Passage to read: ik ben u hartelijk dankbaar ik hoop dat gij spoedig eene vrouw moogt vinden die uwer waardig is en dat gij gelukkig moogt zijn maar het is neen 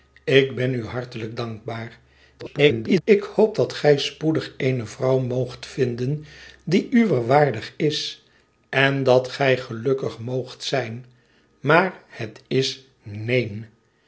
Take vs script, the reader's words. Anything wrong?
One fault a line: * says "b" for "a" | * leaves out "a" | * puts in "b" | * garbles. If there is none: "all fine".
* garbles